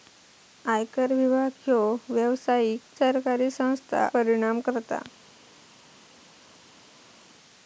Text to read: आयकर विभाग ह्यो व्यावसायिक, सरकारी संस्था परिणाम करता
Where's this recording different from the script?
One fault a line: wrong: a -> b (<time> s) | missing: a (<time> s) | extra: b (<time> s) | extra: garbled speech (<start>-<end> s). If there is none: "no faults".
no faults